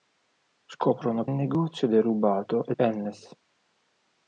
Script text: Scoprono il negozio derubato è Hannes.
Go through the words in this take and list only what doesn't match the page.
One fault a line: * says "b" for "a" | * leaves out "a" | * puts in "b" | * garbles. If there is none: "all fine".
all fine